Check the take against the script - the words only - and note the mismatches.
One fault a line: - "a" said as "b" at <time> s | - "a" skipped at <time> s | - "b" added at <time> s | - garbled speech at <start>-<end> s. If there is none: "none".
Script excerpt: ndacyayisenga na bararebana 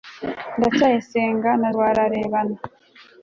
none